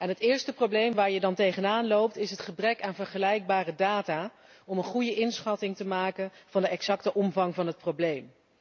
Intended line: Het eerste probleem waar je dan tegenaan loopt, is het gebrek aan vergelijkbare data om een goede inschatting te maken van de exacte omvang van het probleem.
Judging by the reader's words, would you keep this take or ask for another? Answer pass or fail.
pass